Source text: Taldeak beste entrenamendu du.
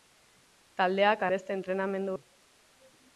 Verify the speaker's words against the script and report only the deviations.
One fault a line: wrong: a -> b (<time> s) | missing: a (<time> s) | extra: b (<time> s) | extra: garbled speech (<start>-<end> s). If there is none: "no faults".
no faults